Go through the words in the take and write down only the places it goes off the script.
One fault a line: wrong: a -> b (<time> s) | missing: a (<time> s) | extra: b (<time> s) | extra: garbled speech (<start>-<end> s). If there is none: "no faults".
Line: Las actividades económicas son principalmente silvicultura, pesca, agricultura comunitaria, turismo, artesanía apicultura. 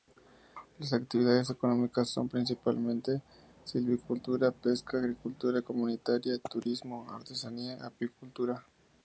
no faults